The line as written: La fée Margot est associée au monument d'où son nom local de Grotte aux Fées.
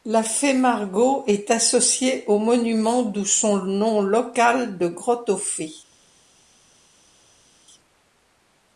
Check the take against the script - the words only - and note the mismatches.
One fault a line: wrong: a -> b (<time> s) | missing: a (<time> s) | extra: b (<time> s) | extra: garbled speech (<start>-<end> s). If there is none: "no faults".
no faults